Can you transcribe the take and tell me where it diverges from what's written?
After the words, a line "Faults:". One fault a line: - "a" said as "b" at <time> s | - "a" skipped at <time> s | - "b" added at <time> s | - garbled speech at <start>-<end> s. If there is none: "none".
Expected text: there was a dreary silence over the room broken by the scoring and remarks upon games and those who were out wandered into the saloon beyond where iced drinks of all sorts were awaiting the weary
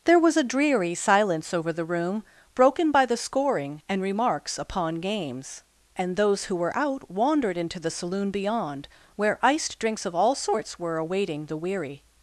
there was a dreary silence over the room broken by the scoring and remarks upon games and those who were out wandered into the saloon beyond where iced drinks of all sorts were awaiting the weary
Faults:
none